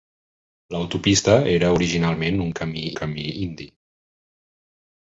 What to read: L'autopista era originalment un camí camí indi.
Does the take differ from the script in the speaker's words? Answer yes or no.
no